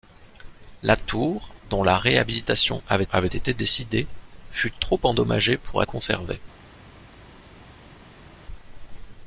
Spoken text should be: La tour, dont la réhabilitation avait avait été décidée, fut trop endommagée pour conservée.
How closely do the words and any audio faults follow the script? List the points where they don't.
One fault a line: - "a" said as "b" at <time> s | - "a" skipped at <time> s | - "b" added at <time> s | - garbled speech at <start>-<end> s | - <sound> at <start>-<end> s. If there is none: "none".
none